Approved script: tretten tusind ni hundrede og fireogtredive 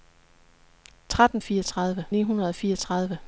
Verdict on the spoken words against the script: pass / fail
fail